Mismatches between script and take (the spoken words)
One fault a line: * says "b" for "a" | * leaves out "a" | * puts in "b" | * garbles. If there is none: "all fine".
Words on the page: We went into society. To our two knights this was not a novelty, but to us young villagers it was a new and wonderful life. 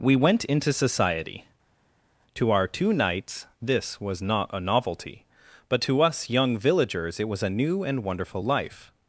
all fine